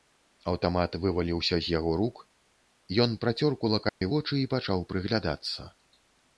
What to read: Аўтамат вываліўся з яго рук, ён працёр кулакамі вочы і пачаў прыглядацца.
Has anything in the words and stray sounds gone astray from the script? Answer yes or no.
yes